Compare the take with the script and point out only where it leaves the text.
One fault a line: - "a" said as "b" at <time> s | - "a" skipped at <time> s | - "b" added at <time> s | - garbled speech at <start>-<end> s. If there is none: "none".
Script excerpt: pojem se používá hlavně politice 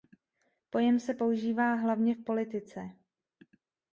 - "v" added at 2.1 s